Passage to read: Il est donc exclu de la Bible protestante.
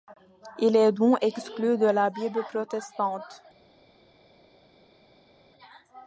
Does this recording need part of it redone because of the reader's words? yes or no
no